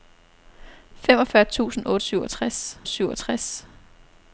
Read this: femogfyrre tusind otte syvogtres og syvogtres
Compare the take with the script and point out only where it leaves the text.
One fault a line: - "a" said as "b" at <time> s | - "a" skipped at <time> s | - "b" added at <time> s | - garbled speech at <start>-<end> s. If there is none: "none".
none